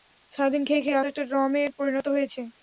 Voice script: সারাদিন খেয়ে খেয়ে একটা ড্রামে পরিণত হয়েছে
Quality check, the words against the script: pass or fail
pass